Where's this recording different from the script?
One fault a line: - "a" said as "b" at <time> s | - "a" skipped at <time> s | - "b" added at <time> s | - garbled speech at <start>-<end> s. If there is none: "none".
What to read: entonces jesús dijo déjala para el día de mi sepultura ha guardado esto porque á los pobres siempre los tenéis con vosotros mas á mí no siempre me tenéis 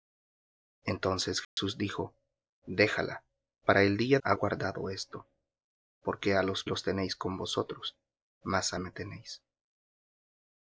- "de mi sepultura" skipped at 4.2 s
- "pobres siempre" skipped at 6.6 s
- "mí no siempre" skipped at 8.8 s